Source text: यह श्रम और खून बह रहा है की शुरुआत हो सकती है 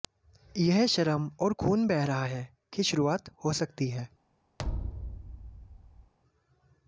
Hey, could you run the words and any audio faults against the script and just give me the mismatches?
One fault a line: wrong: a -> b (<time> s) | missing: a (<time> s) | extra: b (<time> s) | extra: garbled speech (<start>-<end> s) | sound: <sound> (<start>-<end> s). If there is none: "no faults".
sound: thud (4.6-6.1 s)